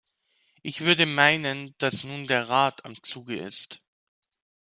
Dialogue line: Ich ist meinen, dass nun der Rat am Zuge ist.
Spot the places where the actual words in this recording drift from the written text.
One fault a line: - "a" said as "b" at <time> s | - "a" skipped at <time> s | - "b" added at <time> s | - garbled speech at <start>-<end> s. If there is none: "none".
- "ist" said as "würde" at 0.8 s